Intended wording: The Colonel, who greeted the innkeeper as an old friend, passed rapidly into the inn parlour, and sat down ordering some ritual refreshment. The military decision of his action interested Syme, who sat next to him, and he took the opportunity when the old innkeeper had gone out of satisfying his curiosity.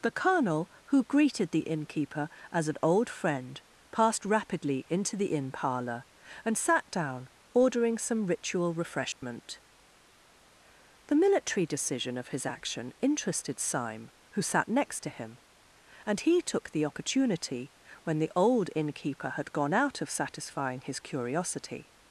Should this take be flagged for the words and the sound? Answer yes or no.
yes